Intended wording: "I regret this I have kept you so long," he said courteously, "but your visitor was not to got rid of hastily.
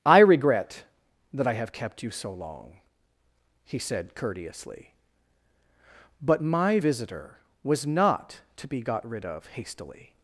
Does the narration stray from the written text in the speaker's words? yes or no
yes